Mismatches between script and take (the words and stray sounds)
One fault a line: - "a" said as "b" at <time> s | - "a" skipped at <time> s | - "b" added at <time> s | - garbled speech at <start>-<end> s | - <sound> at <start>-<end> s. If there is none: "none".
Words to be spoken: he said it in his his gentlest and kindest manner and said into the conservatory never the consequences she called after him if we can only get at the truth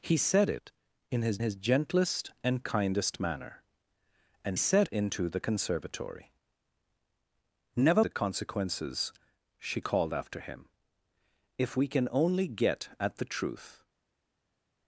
none